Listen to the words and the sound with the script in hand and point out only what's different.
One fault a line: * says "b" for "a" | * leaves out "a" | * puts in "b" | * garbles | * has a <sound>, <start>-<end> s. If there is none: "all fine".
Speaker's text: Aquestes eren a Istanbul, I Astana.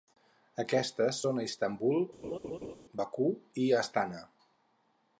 * says "són" for "eren"
* has a laugh, 2.2-2.8 s
* puts in "Bakú"